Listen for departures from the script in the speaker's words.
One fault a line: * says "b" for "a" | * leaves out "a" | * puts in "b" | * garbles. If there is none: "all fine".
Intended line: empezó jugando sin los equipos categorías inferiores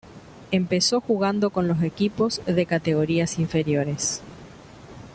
* says "con" for "sin"
* puts in "de"